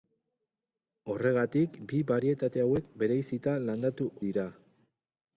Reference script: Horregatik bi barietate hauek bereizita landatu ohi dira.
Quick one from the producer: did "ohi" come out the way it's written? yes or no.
no